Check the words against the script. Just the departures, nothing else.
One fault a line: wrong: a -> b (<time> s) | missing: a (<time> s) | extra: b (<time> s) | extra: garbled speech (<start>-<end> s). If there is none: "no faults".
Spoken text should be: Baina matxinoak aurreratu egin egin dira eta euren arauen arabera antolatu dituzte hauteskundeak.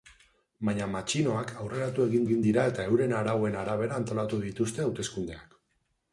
no faults